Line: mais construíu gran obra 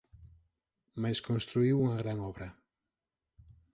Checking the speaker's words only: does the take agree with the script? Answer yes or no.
no